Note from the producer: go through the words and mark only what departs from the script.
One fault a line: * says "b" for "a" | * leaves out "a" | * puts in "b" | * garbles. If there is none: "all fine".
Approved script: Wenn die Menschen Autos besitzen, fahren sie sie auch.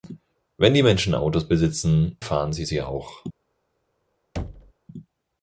all fine